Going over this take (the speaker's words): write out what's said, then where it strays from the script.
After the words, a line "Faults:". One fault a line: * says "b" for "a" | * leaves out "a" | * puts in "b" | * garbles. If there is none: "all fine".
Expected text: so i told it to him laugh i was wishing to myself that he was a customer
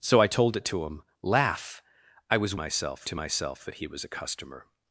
so i told it to him laugh i was myself to myself that he was a customer
Faults:
* says "myself" for "wishing"